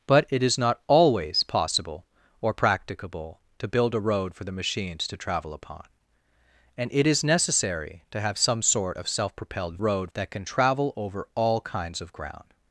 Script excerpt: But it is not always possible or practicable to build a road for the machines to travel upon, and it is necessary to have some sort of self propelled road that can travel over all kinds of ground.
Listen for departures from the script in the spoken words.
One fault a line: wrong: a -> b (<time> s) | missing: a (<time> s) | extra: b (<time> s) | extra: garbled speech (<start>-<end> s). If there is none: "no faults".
no faults